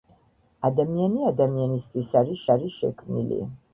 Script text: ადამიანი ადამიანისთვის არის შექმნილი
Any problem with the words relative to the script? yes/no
yes